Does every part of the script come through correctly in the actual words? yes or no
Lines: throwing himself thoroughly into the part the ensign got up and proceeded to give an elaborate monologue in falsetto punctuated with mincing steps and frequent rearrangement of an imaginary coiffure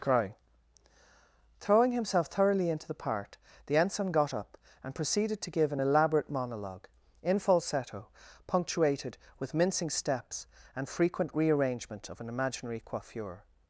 no